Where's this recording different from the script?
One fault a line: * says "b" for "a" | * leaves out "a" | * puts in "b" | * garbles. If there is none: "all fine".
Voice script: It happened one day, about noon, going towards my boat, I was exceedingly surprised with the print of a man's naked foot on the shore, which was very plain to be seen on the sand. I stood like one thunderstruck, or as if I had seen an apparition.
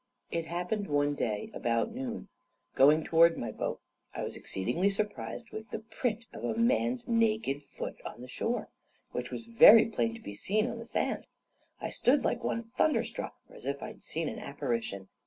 all fine